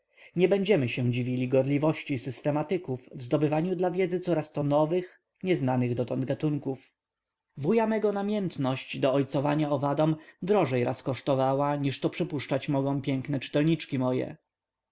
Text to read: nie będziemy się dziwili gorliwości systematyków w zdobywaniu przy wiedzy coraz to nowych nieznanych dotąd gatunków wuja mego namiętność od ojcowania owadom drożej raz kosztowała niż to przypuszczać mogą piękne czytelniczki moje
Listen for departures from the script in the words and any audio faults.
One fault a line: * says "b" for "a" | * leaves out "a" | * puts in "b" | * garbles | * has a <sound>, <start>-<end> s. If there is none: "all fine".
* says "dla" for "przy"
* says "do" for "od"